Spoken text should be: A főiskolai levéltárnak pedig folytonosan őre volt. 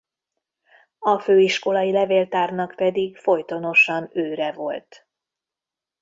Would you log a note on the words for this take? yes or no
no